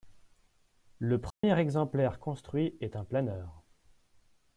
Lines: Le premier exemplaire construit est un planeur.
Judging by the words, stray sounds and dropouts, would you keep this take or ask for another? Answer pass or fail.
fail